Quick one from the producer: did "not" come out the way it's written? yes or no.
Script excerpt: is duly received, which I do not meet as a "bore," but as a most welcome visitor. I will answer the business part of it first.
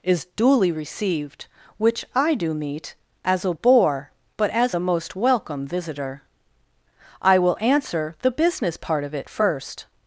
no